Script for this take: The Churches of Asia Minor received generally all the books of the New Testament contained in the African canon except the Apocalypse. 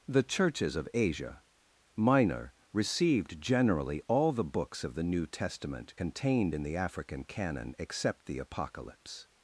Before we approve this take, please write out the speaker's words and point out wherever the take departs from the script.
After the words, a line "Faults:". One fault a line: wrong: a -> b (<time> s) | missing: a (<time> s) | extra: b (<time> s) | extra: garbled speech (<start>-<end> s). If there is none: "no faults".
The Churches of Asia Minor received generally all the books of the New Testament contained in the African canon except the Apocalypse.
Faults:
no faults